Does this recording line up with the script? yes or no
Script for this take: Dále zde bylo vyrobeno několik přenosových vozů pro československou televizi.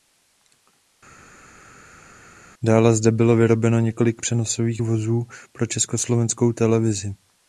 yes